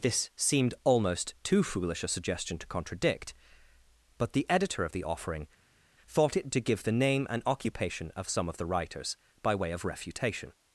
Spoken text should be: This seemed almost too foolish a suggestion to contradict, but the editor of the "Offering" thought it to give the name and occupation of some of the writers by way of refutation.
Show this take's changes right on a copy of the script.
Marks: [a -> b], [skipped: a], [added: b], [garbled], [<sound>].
This seemed almost too foolish a suggestion to contradict, but the editor of the "Offering" thought it to give the name and occupation of some of the writers by way of refutation.